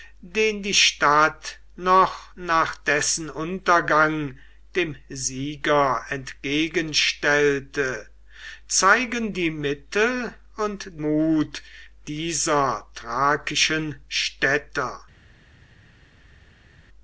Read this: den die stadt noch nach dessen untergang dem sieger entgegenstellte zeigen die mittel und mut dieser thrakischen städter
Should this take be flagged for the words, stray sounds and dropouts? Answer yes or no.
no